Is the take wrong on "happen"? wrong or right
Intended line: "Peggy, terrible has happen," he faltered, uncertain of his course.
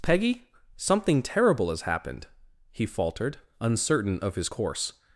wrong